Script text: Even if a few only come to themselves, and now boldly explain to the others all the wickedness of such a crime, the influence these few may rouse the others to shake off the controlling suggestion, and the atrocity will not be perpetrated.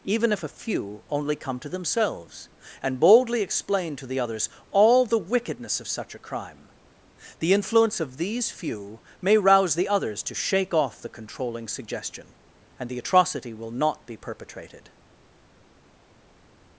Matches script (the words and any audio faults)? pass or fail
fail